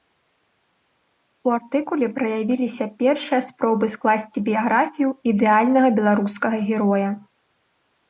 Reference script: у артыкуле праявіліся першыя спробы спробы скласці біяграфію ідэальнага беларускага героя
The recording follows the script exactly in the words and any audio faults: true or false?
false